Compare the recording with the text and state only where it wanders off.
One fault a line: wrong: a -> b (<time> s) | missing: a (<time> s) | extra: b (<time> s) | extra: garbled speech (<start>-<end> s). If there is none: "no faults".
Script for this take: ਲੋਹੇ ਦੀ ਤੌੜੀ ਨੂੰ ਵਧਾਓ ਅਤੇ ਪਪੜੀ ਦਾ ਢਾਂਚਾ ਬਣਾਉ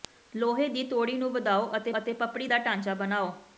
extra: ਅਤੇ (2.0 s)